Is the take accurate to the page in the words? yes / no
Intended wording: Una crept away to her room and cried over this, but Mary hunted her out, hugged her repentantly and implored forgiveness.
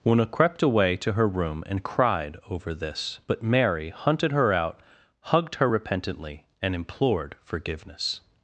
yes